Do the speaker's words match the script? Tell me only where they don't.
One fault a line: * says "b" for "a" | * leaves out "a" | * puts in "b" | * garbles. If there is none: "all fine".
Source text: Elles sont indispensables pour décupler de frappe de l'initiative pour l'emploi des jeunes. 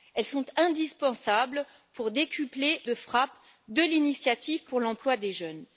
all fine